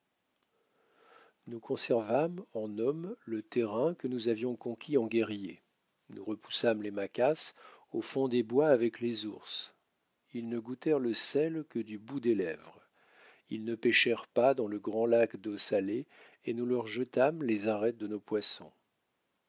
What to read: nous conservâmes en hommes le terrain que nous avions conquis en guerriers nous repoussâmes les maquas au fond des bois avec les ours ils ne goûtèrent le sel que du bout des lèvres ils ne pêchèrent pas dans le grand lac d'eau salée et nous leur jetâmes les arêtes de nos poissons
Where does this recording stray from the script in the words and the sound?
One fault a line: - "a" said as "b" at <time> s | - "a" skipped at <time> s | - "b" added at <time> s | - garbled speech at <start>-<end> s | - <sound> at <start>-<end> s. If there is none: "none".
none